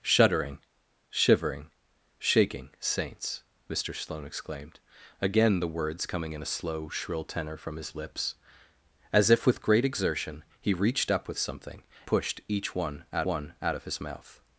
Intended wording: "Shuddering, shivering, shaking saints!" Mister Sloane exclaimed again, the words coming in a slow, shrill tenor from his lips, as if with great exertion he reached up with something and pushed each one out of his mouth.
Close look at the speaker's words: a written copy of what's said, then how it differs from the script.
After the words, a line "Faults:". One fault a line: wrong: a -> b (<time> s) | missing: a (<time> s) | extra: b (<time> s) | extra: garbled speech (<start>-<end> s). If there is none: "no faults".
"Shuddering, shivering, shaking saints!" Mister Sloane exclaimed again, the words coming in a slow, shrill tenor from his lips, as if with great exertion he reached up with something pushed each one out one out of his mouth.
Faults:
missing: and (11.8 s)
extra: one out (13.3 s)